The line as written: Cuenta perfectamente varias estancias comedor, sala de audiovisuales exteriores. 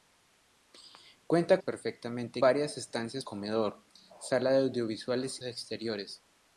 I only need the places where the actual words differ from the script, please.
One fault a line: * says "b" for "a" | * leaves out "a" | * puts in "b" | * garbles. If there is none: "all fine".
all fine